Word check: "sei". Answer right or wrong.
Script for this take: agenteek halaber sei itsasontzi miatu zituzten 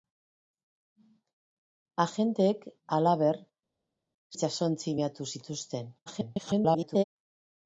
wrong